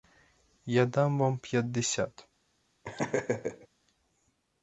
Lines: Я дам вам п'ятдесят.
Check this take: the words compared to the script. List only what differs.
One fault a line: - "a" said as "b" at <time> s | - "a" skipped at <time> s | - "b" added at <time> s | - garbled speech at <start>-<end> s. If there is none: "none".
none